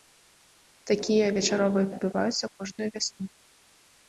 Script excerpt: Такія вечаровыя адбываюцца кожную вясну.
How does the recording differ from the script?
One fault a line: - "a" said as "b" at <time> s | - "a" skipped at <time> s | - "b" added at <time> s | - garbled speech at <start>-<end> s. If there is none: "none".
none